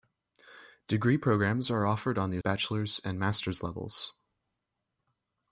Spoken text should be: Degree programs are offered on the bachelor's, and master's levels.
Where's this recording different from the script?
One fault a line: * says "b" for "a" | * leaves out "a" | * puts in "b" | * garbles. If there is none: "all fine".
all fine